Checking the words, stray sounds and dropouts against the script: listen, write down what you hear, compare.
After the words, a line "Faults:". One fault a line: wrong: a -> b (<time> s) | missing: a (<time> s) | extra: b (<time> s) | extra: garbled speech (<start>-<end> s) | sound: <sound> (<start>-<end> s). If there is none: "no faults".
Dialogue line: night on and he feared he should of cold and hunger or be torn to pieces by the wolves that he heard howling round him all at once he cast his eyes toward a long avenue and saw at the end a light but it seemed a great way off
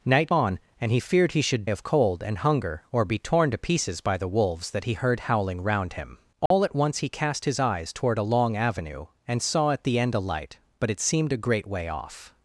night on and he feared he should of cold and hunger or be torn to pieces by the wolves that he heard howling round him all at once he cast his eyes toward a long avenue and saw at the end a light but it seemed a great way off
Faults:
sound: dropout (6.5-6.5 s)